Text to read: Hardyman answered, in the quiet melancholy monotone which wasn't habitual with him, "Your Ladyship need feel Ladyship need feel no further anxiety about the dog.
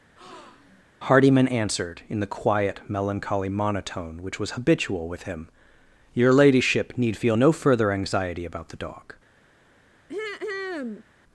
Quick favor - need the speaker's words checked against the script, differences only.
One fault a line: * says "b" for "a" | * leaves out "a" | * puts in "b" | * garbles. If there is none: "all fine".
* says "was" for "wasn't"
* leaves out "Ladyship need feel"